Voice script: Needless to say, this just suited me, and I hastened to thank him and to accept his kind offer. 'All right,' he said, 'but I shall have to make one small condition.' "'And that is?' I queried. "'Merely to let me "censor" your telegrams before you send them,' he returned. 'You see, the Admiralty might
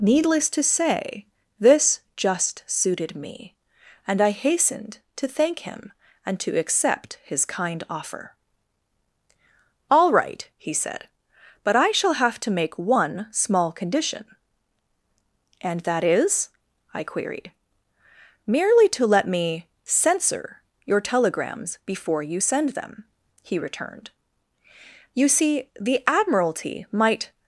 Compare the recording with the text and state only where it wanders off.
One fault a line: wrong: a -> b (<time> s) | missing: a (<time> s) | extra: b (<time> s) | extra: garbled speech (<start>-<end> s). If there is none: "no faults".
no faults